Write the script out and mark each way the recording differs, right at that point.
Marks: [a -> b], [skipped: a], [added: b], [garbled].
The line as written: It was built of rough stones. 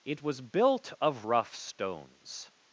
It was built of rough stones.